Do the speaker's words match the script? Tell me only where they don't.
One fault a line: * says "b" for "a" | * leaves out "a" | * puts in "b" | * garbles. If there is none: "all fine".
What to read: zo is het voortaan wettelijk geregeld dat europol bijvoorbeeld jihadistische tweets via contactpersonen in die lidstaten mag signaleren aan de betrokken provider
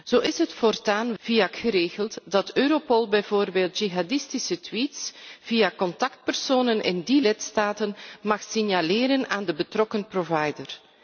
* says "via" for "wettelijk"